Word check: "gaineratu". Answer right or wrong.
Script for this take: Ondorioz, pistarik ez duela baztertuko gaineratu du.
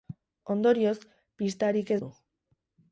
wrong